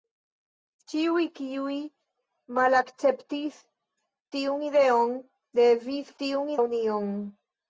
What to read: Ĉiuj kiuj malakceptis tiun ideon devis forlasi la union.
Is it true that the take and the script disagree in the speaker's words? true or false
true